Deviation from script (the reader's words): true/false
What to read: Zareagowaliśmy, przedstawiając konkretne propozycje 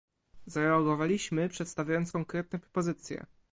false